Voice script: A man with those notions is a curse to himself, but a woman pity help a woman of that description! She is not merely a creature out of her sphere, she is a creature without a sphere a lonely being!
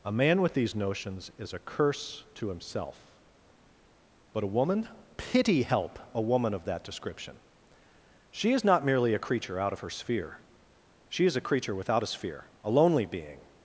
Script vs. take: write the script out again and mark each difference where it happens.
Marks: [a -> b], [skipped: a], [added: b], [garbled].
A man with [those -> these] notions is a curse to himself, but a woman pity help a woman of that description! She is not merely a creature out of her sphere, she is a creature without a sphere a lonely being!